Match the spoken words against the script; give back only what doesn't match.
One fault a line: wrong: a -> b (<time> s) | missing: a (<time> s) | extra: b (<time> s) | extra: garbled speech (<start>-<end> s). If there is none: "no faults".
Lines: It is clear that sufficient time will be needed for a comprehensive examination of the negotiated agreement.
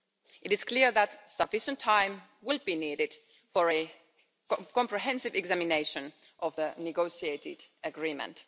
no faults